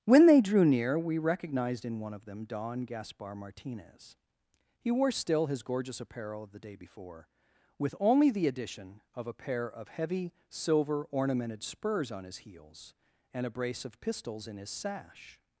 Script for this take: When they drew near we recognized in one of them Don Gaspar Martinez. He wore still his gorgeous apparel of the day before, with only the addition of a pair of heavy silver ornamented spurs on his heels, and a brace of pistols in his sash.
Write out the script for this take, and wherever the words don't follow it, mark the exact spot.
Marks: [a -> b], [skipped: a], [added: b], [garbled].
When they drew near we recognized in one of them Don Gaspar Martinez. He wore still his gorgeous apparel of the day before, with only the addition of a pair of heavy silver ornamented spurs on his heels, and a brace of pistols in his sash.